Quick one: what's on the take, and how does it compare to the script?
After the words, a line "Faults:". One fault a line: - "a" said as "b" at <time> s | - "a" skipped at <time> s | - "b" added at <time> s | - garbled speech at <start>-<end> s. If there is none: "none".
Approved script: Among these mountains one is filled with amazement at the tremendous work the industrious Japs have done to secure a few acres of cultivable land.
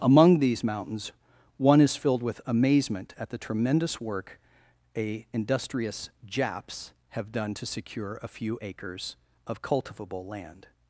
Among these mountains one is filled with amazement at the tremendous work a industrious Japs have done to secure a few acres of cultivable land.
Faults:
- "the" said as "a" at 5.0 s